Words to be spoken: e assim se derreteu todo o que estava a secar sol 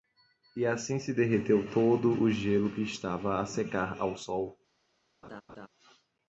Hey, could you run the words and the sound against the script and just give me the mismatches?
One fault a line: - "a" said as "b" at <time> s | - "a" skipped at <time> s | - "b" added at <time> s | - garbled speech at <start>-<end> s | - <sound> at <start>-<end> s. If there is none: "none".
- "gelo" added at 2.3 s
- "ao" added at 4.0 s
- laugh at 5.2-5.7 s